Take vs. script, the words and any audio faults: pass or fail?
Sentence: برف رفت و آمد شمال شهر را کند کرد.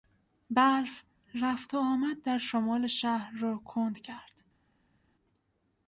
fail